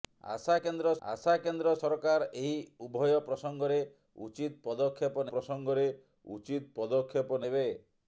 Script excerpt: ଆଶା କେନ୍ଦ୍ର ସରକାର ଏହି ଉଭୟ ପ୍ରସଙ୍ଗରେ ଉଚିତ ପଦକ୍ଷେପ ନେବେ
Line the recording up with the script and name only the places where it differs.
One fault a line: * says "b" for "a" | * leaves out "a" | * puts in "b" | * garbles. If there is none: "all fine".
* puts in "ଆଶା କେନ୍ଦ୍ର"
* puts in "ପ୍ରସଙ୍ଗରେ ଉଚିତ ପଦକ୍ଷେପ"